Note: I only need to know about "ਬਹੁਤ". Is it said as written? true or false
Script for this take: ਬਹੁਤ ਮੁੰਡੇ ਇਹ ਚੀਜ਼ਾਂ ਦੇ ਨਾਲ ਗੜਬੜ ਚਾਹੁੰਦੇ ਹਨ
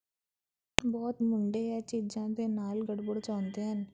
true